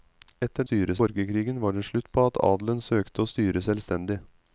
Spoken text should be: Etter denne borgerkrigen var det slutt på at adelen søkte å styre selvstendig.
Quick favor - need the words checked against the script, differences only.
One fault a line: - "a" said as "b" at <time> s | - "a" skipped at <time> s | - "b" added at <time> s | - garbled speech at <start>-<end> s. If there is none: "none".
- "denne" said as "styre" at 0.6 s